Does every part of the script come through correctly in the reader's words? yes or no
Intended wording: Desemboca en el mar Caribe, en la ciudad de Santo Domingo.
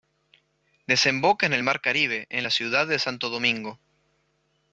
yes